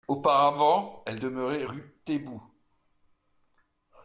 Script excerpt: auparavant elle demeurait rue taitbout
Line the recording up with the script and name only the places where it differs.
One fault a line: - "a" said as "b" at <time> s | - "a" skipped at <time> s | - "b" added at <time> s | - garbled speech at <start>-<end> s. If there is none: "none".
none